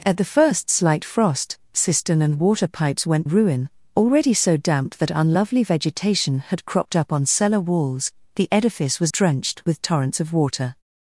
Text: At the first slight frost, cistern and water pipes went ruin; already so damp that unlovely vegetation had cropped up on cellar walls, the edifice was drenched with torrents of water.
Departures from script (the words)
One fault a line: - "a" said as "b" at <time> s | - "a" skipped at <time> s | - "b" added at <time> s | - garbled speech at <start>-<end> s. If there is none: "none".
none